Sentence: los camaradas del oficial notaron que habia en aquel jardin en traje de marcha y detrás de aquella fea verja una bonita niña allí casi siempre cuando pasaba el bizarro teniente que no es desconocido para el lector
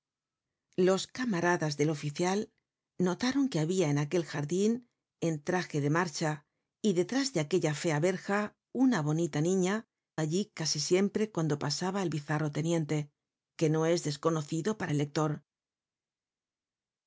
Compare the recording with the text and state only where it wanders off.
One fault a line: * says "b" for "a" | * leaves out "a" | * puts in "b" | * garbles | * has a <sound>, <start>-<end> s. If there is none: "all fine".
all fine